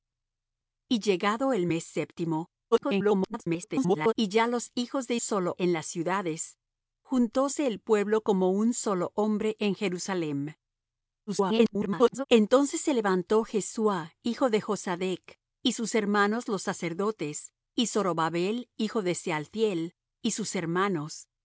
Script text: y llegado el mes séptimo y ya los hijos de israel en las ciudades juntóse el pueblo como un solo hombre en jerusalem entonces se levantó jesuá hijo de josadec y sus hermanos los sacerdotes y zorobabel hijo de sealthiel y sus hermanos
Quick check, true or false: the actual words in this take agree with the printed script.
false